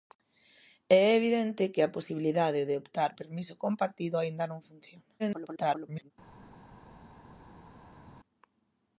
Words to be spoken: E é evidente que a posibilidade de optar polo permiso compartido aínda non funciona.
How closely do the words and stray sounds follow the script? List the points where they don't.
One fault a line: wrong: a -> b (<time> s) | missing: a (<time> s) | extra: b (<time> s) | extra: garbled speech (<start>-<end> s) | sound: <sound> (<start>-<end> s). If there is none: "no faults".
missing: polo (3.1 s)
extra: garbled speech (5.2-6.1 s)